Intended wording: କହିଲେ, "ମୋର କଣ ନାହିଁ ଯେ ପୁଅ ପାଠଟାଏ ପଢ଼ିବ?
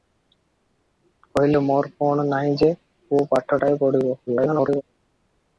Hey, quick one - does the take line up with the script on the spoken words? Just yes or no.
no